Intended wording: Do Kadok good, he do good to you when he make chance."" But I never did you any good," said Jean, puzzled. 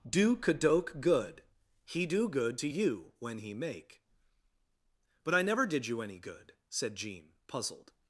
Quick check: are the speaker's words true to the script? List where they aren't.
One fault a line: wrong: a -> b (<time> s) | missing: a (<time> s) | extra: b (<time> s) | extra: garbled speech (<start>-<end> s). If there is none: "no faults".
missing: chance (4.0 s)